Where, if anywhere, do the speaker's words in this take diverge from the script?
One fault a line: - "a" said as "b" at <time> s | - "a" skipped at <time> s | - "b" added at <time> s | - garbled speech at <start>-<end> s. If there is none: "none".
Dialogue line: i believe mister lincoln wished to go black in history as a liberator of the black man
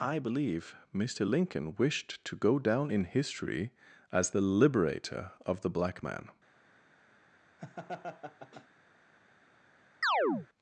- "black" said as "down" at 2.6 s
- "a" said as "the" at 4.3 s